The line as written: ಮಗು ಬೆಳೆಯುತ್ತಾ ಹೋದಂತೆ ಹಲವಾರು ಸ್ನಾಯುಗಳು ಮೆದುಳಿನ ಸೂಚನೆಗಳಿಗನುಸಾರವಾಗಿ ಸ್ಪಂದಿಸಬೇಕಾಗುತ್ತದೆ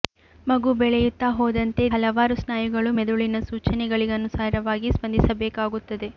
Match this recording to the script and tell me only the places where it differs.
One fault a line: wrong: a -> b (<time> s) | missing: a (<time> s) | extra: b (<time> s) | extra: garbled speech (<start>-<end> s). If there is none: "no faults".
no faults